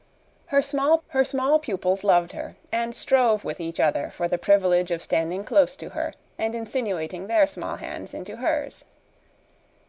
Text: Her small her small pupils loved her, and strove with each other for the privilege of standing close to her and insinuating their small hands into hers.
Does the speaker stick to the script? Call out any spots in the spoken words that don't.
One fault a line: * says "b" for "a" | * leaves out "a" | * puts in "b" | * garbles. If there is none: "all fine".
all fine